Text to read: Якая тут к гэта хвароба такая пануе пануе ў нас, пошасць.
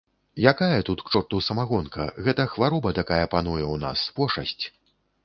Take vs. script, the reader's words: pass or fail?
fail